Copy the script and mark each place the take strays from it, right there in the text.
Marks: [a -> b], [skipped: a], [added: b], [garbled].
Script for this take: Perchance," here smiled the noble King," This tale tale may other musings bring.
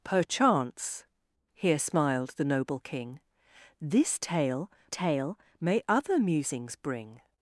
Perchance," here smiled the noble King," This tale tale may other musings bring.